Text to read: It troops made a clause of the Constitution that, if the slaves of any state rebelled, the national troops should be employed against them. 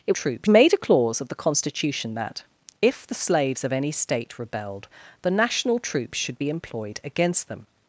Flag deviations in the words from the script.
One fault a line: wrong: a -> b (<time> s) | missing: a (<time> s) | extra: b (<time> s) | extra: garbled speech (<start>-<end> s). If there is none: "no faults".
no faults